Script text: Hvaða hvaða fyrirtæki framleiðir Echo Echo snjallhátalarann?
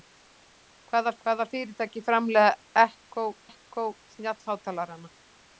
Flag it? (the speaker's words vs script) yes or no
no